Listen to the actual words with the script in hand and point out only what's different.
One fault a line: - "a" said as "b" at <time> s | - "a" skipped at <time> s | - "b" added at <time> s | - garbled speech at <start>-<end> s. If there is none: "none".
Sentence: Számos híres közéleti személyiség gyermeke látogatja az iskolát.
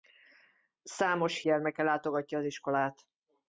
- "híres közéleti személyiség" skipped at 1.4 s